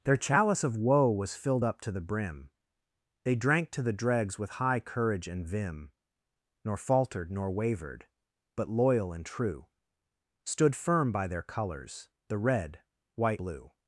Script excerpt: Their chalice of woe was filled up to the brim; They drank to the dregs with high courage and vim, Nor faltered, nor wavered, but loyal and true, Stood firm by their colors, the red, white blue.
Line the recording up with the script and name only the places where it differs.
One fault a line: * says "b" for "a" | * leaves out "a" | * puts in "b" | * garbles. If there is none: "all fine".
all fine